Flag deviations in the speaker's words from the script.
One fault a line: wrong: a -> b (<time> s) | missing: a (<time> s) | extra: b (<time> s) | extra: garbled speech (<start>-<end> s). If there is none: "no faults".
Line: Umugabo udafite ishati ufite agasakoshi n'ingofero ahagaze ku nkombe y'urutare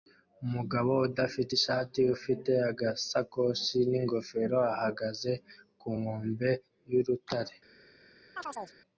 no faults